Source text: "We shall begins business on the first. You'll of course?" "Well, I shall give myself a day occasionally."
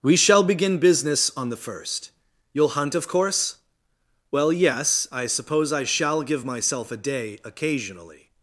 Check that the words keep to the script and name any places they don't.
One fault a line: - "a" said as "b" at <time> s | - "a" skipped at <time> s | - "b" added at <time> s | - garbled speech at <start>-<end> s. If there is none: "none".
- "begins" said as "begin" at 0.4 s
- "hunt" added at 2.8 s
- "yes I suppose" added at 4.5 s